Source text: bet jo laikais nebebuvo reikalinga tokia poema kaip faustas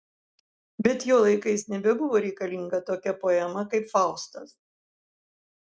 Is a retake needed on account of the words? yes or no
no